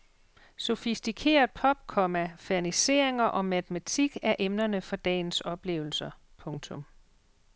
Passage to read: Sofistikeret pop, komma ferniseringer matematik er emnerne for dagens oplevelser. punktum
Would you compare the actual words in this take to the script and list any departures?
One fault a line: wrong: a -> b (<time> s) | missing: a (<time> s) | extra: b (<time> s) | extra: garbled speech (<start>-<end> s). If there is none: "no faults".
extra: og (3.2 s)